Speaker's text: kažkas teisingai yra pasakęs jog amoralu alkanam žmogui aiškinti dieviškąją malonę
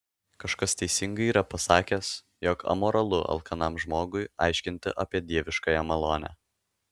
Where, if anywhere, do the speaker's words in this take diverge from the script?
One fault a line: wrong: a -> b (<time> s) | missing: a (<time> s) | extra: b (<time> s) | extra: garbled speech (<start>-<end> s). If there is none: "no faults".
extra: apie (5.1 s)